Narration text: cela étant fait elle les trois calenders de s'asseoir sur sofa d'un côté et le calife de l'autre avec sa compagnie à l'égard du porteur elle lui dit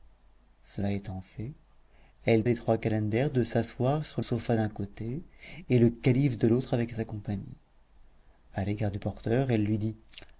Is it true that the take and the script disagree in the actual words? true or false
false